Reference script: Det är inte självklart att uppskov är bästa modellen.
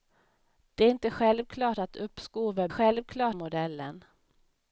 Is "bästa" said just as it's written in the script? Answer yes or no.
no